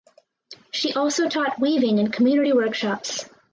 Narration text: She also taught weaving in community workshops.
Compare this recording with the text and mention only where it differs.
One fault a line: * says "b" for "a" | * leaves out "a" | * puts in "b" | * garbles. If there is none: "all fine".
all fine